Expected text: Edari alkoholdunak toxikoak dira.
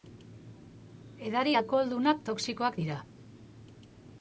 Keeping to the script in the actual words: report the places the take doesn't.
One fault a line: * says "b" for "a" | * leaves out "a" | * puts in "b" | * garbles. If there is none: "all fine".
all fine